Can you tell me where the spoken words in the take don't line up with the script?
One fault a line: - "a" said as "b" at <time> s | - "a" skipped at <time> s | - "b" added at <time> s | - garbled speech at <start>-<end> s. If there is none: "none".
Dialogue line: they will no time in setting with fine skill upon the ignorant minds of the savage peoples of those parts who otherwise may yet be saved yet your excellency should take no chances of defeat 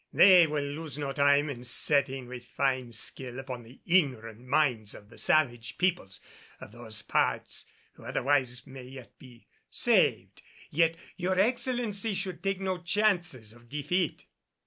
- "lose" added at 0.6 s